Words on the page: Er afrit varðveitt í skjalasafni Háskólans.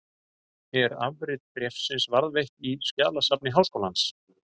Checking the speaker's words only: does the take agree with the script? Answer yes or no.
no